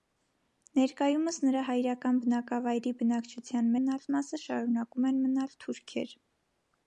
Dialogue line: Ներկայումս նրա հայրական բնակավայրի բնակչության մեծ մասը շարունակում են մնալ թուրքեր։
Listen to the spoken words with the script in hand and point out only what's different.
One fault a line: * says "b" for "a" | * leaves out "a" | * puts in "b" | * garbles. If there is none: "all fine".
* says "մնալ" for "մեծ"